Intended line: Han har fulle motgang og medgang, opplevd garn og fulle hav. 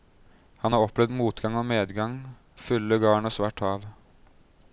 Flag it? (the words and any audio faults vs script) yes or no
yes